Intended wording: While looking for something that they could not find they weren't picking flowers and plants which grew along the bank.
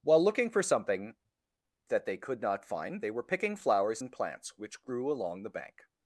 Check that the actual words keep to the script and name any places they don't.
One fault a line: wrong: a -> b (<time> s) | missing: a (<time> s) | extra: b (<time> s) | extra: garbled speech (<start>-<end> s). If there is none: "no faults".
wrong: weren't -> were (3.1 s)